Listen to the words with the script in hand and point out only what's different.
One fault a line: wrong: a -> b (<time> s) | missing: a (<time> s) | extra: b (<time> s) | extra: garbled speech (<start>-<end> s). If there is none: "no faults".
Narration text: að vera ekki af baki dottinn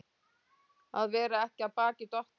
no faults